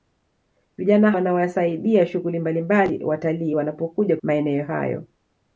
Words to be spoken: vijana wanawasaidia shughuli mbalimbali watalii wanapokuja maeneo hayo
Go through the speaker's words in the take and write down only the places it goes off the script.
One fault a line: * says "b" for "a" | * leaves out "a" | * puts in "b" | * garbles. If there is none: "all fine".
all fine